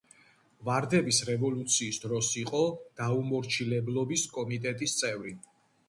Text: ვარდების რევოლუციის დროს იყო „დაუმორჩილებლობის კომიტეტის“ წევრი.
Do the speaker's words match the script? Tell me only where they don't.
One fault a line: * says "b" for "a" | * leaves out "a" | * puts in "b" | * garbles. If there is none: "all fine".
all fine